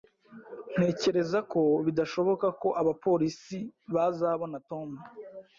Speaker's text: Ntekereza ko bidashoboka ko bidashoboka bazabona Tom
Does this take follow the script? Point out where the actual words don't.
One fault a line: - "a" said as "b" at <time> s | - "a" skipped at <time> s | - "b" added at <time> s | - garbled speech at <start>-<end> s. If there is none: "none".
- "bidashoboka" said as "abapolisi" at 2.8 s